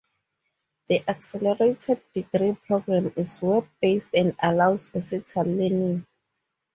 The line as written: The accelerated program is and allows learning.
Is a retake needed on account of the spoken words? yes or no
yes